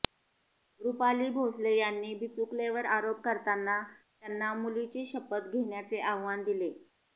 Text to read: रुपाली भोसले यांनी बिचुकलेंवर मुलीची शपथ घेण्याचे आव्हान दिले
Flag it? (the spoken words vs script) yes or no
yes